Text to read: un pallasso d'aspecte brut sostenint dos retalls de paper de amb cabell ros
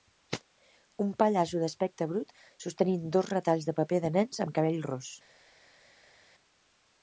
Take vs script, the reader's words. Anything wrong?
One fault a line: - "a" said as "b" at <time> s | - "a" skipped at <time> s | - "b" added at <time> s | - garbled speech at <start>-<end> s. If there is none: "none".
- "nens" added at 4.2 s